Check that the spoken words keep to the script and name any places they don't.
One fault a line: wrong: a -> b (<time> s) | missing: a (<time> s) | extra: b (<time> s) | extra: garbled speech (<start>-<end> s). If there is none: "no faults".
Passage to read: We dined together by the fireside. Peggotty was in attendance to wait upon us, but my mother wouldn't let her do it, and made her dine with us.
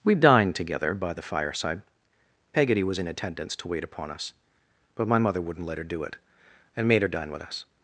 no faults